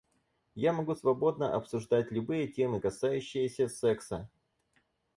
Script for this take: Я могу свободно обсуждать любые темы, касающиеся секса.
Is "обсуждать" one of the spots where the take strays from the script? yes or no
no